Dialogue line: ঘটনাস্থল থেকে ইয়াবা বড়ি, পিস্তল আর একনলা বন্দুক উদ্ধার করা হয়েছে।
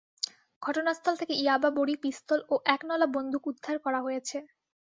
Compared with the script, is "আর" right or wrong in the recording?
wrong